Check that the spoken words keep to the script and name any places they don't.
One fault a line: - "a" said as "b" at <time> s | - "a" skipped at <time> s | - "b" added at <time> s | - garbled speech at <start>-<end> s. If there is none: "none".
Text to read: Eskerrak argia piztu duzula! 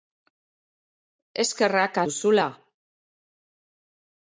- "argia piztu" skipped at 2.0 s